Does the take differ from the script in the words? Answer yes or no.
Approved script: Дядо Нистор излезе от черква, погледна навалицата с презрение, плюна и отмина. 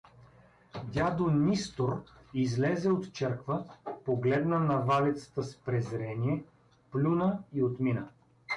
no